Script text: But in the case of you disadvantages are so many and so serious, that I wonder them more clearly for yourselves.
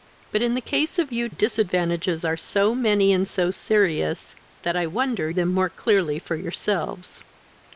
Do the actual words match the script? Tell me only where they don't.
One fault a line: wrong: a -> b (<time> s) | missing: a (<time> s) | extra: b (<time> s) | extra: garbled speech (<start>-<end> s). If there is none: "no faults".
no faults